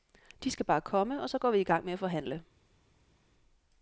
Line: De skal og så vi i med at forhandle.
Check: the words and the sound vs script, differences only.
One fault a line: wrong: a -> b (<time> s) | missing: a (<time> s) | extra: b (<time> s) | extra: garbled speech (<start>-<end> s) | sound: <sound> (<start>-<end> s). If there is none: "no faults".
extra: bare komme (0.7 s)
extra: går (1.4 s)
extra: gang (1.6 s)